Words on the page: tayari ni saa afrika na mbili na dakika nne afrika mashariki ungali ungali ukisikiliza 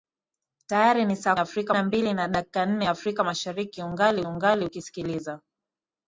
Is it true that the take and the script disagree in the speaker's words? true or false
false